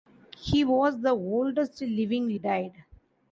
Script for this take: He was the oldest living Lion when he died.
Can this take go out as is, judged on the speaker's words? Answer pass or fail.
fail